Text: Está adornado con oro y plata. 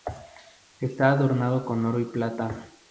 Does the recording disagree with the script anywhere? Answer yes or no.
no